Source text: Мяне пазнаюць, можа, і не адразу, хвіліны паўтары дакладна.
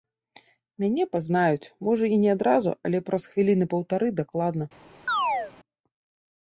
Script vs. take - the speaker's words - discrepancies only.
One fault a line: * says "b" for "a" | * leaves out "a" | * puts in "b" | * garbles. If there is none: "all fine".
* puts in "але праз"